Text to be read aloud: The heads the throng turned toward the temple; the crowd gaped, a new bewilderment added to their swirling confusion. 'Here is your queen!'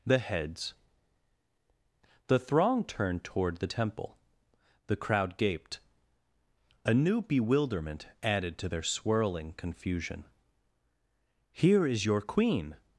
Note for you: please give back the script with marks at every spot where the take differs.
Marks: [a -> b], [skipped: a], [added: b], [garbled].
The heads the throng turned toward the temple; the crowd gaped, a new bewilderment added to their swirling confusion. 'Here is your queen!'